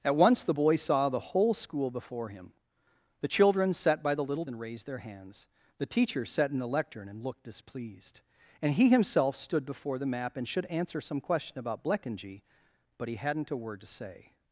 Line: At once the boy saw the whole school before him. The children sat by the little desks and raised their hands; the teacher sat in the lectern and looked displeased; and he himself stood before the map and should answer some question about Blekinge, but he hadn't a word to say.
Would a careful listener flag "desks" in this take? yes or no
yes